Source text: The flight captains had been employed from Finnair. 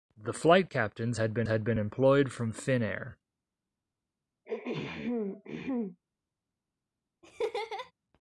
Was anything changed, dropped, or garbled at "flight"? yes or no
no